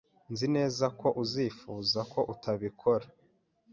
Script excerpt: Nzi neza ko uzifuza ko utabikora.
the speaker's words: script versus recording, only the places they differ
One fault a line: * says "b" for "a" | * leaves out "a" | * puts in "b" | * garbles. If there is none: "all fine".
all fine